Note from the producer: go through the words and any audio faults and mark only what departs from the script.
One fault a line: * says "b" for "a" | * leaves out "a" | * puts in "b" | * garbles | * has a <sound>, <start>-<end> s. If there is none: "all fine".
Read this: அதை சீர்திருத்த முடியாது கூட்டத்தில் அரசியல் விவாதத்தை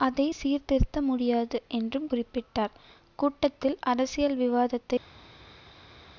* puts in "என்றும் குறிப்பிட்டார்"